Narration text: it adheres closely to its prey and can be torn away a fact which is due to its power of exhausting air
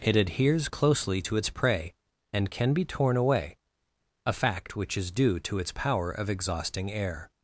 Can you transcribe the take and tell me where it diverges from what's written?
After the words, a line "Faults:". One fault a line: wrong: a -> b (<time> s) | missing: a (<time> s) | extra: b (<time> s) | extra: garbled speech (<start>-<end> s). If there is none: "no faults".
it adheres closely to its prey and can be torn away a fact which is due to its power of exhausting air
Faults:
no faults